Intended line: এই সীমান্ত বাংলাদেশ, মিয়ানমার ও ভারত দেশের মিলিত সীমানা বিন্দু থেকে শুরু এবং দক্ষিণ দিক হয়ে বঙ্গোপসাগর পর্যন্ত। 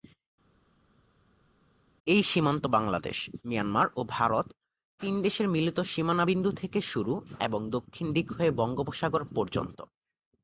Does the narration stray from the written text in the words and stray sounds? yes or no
yes